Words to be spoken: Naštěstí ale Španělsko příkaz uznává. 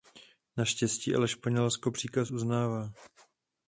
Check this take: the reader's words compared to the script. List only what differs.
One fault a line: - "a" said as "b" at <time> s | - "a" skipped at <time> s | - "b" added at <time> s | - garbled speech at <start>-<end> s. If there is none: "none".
none